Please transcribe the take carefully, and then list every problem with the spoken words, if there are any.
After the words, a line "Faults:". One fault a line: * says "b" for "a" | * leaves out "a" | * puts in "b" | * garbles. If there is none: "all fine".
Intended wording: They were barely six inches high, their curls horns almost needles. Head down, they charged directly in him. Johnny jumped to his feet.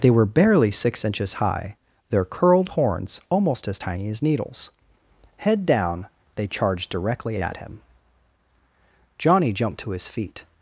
They were barely six inches high, their curled horns almost as tiny as needles. Head down, they charged directly at him. Johnny jumped to his feet.
Faults:
* says "curled" for "curls"
* puts in "as tiny as"
* says "at" for "in"